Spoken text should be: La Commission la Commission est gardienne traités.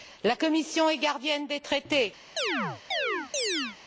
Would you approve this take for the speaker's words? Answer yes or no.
no